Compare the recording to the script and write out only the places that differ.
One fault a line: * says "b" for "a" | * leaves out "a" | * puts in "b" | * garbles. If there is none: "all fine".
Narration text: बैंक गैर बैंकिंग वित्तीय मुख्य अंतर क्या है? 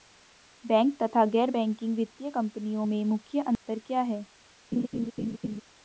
* puts in "तथा"
* puts in "कंपनियों में"